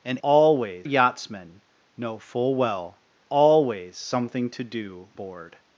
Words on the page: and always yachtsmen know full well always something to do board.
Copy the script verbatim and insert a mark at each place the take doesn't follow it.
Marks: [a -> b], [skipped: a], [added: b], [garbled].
and always yachtsmen know full well always something to do board.